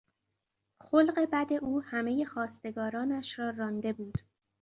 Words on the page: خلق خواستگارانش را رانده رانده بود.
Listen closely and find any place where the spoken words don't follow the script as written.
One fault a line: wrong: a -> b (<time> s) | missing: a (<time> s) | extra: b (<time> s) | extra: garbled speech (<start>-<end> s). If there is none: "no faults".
extra: بد او همهی (1.3 s)
missing: رانده (3.9 s)